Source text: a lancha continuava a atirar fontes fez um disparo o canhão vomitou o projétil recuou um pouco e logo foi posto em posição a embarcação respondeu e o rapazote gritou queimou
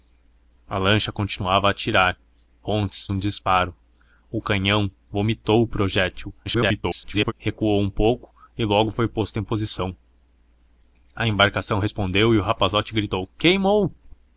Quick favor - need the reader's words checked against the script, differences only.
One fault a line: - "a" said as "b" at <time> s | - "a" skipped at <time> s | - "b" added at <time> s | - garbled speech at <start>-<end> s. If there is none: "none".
- "fez" skipped at 3.1 s
- garbled speech at 6.5-7.3 s